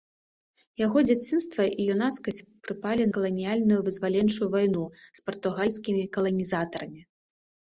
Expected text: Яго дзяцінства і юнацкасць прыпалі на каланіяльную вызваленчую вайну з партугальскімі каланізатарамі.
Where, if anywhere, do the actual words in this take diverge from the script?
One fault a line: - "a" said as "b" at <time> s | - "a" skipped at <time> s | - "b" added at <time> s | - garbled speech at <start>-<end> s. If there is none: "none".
- "на" skipped at 3.0 s